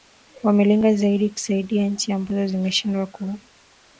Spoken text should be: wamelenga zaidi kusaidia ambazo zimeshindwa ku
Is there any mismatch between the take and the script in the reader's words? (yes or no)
yes